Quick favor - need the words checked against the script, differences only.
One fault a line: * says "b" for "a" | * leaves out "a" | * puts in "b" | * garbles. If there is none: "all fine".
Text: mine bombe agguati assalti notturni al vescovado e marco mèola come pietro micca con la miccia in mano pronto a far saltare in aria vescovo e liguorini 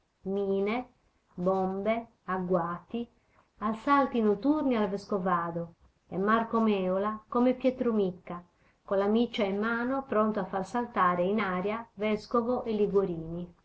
all fine